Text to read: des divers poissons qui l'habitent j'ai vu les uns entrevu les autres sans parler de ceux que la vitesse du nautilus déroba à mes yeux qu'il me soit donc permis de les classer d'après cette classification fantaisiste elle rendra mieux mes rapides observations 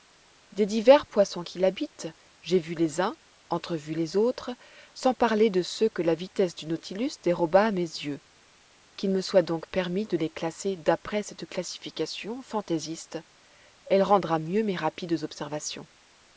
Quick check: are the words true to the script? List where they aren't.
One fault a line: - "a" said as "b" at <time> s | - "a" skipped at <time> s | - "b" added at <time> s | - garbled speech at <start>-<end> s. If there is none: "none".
none